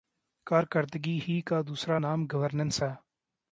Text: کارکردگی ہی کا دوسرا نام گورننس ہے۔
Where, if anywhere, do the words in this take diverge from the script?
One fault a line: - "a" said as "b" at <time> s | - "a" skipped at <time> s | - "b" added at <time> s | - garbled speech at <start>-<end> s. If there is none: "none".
none